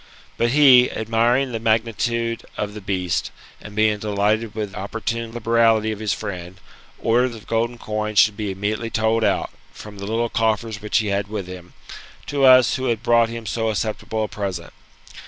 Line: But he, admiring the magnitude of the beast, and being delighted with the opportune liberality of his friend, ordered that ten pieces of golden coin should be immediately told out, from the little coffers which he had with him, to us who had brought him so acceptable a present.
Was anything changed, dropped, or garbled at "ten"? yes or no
yes